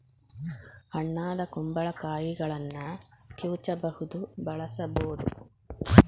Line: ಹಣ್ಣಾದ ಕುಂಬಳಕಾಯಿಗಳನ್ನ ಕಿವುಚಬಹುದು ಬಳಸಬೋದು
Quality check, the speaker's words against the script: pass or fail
pass